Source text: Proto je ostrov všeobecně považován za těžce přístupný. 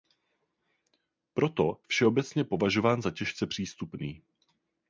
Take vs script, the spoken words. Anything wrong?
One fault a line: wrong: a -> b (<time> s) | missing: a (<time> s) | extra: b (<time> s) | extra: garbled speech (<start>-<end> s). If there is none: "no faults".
missing: je ostrov (1.8 s)